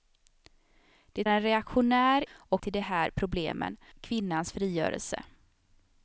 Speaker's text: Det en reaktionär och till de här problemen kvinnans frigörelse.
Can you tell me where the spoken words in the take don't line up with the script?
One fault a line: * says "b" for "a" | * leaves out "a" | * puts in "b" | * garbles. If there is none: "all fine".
all fine